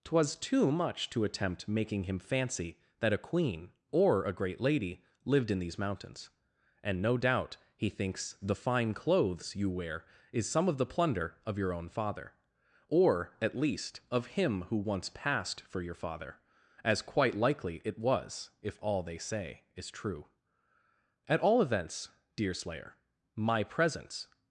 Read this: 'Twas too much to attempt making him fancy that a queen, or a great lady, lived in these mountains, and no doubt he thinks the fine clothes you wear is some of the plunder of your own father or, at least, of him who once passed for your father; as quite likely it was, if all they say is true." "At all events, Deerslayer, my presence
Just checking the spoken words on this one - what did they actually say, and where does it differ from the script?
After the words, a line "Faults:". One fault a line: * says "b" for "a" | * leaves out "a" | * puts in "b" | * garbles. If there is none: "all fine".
'Twas too much to attempt making him fancy that a queen, or a great lady, lived in these mountains, and no doubt he thinks the fine clothes you wear is some of the plunder of your own father or, at least, of him who once passed for your father; as quite likely it was, if all they say is true." "At all events, Deerslayer, my presence
Faults:
all fine